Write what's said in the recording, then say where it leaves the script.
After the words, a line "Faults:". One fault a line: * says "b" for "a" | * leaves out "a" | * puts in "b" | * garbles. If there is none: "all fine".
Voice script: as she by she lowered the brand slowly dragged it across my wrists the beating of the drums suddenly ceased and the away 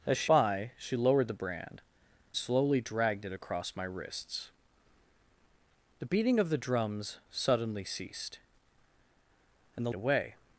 as she by she lowered the brand slowly dragged it across my wrists the beating of the drums suddenly ceased and the away
Faults:
all fine